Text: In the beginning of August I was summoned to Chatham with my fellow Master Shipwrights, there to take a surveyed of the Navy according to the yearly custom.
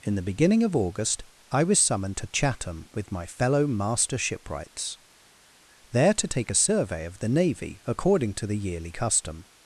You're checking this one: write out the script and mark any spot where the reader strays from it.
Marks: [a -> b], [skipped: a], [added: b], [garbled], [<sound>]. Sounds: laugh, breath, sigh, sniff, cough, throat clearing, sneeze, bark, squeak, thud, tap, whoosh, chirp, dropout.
In the beginning of August I was summoned to Chatham with my fellow Master Shipwrights, there to take a [surveyed -> survey] of the Navy according to the yearly custom.